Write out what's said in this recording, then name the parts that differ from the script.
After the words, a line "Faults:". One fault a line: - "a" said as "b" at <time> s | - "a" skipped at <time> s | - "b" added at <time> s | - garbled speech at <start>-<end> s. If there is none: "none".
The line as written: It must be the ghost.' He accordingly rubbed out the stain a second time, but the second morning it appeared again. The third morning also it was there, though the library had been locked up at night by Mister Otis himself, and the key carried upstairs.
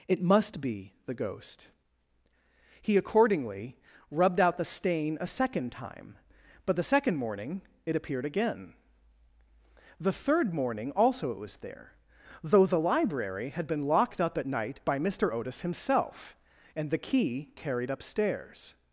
It must be the ghost.' He accordingly rubbed out the stain a second time, but the second morning it appeared again. The third morning also it was there, though the library had been locked up at night by Mister Otis himself, and the key carried upstairs.
Faults:
none